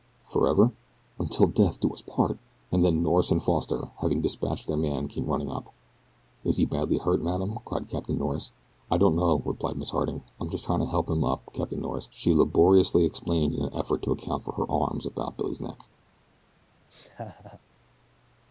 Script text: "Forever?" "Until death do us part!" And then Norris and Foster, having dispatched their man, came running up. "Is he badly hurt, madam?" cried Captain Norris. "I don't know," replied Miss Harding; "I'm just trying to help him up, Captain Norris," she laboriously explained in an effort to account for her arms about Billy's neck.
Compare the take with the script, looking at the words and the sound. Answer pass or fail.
fail